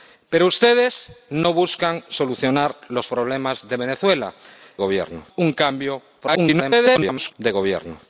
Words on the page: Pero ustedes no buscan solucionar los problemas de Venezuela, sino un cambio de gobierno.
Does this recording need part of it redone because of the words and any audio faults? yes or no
yes